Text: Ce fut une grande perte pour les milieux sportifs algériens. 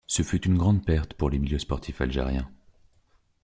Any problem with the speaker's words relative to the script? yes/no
no